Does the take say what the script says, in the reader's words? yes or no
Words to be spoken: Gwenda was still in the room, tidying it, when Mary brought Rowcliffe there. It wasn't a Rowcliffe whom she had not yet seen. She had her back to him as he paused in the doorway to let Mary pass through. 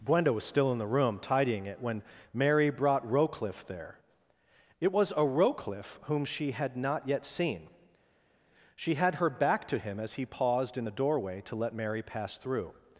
no